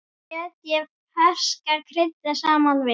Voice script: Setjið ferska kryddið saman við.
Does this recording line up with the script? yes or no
yes